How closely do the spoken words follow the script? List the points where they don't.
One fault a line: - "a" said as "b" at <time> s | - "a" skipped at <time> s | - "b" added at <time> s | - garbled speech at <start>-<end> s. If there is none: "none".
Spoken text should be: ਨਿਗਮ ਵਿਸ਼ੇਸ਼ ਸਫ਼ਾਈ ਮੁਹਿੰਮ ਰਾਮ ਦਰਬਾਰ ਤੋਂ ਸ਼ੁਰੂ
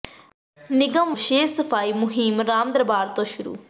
none